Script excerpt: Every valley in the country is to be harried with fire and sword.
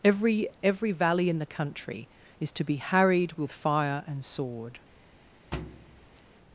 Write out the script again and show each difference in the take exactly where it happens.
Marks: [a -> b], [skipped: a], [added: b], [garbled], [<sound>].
Every [added: every] valley in the country is to be harried with fire and sword. [thud]